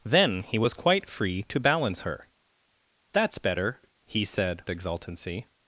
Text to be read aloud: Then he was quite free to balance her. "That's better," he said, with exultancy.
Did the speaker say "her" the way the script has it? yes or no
yes